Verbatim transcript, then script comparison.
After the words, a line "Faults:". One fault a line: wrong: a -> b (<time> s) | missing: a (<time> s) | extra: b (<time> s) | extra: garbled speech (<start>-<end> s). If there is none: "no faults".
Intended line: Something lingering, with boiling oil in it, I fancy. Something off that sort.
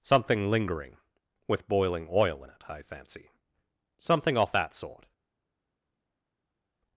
Something lingering, with boiling oil in it, I fancy. Something off that sort.
Faults:
no faults